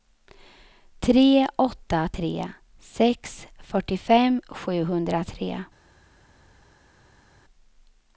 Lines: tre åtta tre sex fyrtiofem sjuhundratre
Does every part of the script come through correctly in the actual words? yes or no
yes